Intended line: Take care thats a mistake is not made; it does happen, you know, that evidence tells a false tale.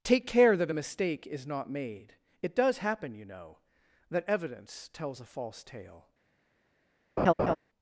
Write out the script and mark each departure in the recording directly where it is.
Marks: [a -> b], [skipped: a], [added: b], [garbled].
Take care [thats -> that] a mistake is not made; it does happen, you know, that evidence tells a false tale.